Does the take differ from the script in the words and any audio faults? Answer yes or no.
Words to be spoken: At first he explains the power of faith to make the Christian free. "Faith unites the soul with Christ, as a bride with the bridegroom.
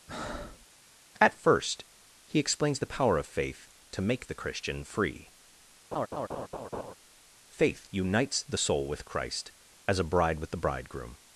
yes